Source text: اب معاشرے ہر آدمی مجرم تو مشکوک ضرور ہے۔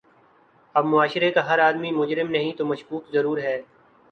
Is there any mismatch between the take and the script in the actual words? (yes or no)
yes